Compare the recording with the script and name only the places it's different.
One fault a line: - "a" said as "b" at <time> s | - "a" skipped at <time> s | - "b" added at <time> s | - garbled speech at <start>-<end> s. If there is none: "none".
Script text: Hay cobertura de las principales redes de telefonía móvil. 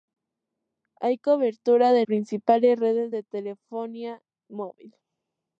- "las" skipped at 2.0 s